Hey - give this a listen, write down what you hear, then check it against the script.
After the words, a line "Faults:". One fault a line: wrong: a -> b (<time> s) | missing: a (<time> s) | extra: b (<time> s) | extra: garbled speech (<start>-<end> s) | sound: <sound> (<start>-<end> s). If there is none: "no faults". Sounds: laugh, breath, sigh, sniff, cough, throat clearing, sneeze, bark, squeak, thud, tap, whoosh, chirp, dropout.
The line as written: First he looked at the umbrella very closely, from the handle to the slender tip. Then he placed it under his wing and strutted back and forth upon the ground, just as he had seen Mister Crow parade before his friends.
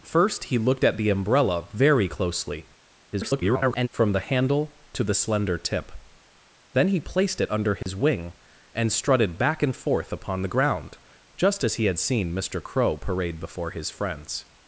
First he looked at the umbrella very closely, [garbled] from the handle to the slender tip. Then he placed it under his wing and strutted back and forth upon the ground, just as he had seen Mister Crow parade before his friends.
Faults:
extra: garbled speech (3.1-3.9 s)
sound: dropout (7.8-7.9 s)